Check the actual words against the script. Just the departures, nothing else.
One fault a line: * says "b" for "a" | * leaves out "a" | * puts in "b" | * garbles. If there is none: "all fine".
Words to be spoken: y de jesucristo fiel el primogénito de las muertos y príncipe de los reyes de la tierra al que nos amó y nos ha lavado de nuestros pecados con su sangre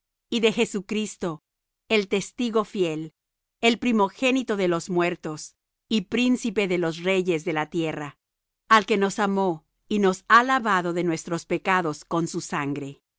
* puts in "el testigo"
* says "los" for "las"